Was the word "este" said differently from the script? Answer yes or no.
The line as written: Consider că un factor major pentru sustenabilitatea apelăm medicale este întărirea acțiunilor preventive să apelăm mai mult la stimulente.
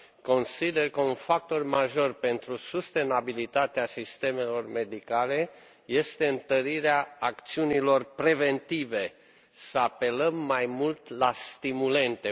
no